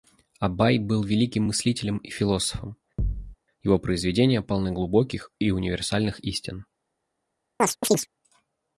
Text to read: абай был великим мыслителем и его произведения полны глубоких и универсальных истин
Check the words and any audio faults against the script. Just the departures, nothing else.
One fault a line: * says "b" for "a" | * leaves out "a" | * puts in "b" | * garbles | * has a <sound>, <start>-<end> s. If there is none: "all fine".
* puts in "философом"
* has a thud, 3.0-3.4 s
* has a chirp, 7.6-8.1 s